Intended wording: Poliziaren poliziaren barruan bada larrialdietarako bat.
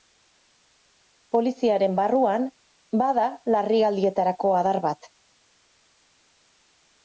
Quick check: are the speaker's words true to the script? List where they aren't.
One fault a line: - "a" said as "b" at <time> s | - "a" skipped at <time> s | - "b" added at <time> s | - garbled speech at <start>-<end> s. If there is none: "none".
- "poliziaren" skipped at 2.0 s
- "adar" added at 4.6 s